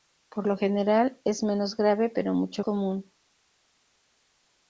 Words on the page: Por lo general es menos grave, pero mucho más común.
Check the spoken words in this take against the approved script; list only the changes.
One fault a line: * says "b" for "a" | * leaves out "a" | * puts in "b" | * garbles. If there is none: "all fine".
* leaves out "más"